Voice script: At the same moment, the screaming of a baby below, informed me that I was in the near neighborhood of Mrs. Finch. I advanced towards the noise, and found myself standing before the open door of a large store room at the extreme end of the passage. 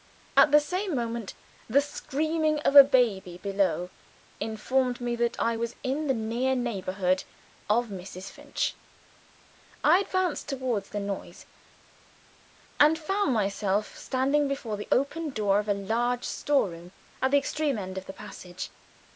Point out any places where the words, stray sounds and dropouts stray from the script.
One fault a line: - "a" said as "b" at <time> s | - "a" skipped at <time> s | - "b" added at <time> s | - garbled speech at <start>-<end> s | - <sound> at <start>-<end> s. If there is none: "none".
none